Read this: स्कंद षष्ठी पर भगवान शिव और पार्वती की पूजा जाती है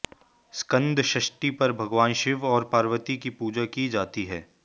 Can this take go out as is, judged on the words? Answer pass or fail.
fail